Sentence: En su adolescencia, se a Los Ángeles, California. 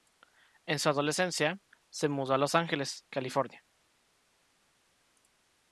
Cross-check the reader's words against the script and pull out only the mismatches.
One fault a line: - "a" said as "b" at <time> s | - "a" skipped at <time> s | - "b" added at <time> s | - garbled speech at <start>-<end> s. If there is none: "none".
- "mudó" added at 2.1 s